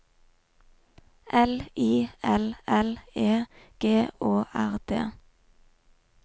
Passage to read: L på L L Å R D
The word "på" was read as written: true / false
false